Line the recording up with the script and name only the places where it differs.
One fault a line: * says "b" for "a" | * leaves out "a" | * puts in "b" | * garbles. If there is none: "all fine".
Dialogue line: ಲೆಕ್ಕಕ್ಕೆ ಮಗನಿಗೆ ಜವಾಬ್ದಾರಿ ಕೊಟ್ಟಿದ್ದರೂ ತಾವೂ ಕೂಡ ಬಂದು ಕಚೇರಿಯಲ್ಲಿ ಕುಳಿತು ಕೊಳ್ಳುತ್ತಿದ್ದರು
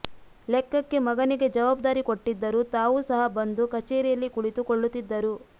* says "ಸಹ" for "ಕೂಡ"